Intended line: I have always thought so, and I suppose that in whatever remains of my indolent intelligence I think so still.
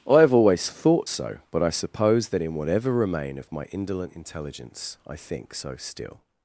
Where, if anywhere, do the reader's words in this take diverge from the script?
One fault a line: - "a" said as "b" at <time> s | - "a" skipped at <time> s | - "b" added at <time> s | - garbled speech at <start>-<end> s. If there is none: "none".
- "and" said as "but" at 1.5 s
- "remains" said as "remain" at 2.9 s